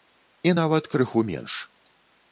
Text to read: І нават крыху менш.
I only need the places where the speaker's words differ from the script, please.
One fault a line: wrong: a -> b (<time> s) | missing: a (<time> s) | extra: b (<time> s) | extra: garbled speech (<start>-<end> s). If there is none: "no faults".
no faults